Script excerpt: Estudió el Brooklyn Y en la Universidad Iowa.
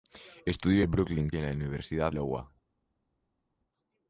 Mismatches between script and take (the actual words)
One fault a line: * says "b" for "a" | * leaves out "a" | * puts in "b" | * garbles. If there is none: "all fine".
all fine